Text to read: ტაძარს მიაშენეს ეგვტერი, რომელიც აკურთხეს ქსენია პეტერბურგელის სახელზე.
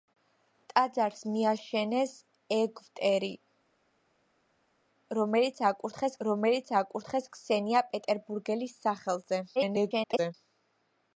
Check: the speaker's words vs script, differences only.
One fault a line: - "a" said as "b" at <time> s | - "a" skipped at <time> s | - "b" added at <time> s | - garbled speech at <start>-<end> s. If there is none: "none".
- "რომელიც აკურთხეს" added at 6.3 s
- garbled speech at 9.6-10.3 s